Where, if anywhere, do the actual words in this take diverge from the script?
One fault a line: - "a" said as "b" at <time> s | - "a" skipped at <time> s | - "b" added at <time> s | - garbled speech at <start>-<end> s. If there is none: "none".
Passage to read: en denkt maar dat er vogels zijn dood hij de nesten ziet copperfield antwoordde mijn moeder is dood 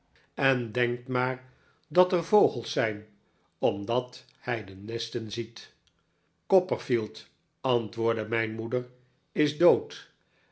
- "dood" said as "omdat" at 3.6 s